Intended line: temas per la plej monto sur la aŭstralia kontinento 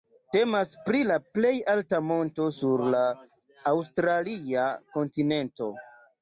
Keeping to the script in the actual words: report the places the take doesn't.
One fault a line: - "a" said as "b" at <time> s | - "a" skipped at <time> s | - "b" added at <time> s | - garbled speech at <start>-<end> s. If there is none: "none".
- "per" said as "pri" at 0.8 s
- "alta" added at 1.7 s